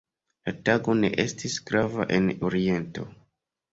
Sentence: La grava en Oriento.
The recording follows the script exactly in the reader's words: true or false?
false